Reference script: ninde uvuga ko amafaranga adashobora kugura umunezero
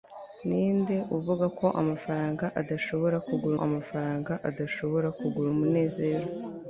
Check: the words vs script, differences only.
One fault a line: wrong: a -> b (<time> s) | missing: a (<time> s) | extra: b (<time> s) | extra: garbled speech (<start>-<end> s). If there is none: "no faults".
extra: amafaranga adashobora kugura (3.7 s)